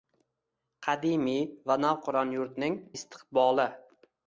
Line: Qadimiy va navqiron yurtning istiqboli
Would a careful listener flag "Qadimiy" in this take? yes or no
no